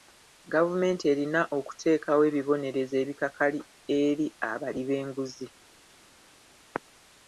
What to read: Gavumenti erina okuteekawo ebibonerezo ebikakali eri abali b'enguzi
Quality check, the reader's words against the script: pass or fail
pass